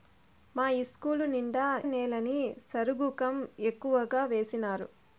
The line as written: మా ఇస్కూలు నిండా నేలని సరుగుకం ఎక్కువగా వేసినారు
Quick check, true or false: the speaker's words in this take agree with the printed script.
true